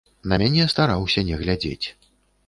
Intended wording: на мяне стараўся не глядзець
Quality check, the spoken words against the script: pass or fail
pass